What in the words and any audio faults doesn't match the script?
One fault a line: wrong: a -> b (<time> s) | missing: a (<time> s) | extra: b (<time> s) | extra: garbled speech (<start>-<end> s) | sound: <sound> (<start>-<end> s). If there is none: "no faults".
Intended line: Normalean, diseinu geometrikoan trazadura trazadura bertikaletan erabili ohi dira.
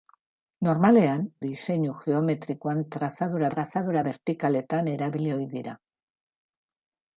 no faults